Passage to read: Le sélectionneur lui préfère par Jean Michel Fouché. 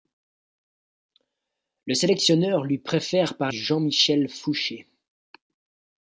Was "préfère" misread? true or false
false